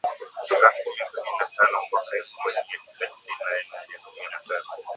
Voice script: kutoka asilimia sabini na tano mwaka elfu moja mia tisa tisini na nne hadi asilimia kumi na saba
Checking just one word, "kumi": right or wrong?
wrong